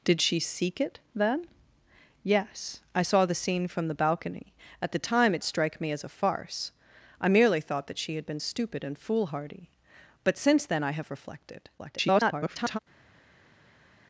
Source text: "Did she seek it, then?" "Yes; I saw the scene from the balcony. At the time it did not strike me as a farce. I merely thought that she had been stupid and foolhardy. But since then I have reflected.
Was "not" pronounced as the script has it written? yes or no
no